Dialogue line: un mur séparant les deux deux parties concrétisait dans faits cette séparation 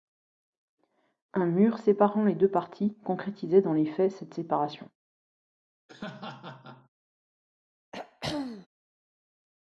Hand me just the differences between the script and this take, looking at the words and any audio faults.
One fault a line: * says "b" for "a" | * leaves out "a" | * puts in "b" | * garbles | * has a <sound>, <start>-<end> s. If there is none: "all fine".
* leaves out "deux"
* puts in "les"
* has a laugh, 5.9-6.9 s
* has a throat clearing, 7.9-8.7 s